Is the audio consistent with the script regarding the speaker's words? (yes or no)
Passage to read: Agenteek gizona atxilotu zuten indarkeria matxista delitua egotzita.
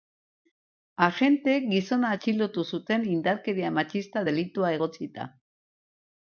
yes